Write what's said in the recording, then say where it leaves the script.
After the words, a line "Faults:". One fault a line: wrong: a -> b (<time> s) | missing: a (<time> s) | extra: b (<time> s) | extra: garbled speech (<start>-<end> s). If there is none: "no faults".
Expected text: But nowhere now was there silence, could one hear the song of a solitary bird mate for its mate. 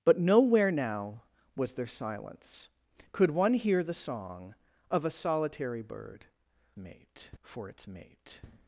But nowhere now was there silence, could one hear the song of a solitary bird mate for its mate.
Faults:
no faults